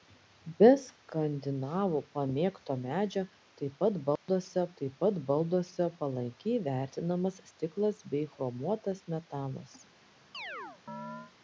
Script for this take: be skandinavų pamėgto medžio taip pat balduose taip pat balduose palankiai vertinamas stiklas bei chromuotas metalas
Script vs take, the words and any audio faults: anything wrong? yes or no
yes